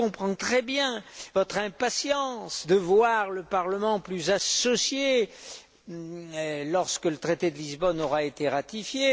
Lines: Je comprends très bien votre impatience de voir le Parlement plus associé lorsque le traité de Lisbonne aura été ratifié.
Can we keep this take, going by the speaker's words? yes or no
yes